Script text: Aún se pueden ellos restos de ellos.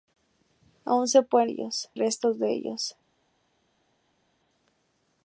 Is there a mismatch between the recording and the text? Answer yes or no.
no